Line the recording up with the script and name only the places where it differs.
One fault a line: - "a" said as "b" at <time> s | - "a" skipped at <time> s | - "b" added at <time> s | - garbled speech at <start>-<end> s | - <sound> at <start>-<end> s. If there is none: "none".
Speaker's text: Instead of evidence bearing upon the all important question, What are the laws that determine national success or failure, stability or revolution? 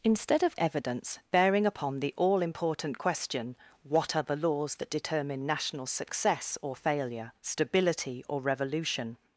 none